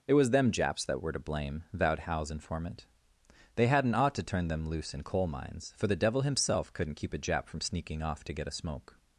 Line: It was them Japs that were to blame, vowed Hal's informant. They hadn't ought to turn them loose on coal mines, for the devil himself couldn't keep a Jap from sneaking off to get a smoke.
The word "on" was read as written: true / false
false